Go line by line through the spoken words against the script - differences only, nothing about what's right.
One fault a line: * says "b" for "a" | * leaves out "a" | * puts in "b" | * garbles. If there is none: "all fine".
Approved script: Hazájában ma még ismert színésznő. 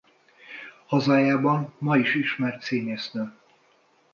* says "is" for "még"